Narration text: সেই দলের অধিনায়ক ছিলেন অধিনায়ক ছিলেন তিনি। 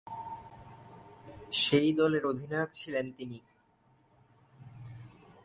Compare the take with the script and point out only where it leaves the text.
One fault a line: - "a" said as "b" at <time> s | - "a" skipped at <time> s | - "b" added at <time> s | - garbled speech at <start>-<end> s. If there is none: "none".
- "অধিনায়ক ছিলেন" skipped at 3.1 s